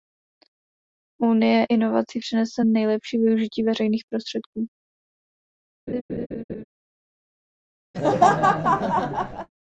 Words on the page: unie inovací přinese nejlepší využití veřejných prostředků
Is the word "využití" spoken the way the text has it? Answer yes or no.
yes